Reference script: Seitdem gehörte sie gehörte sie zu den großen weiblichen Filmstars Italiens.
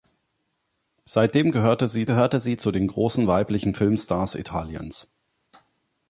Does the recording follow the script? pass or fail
pass